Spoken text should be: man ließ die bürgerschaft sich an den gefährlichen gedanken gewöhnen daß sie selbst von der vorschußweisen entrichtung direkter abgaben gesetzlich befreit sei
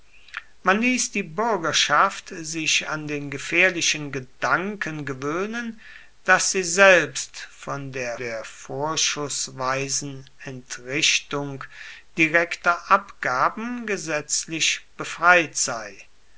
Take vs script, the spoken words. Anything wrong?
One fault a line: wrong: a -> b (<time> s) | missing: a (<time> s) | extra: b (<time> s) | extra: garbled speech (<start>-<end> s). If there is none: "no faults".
extra: der (8.2 s)